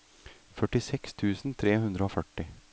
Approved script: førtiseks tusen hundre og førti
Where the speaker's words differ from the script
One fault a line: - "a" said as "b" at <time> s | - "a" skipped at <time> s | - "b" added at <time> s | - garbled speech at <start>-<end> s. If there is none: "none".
- "tre" added at 1.6 s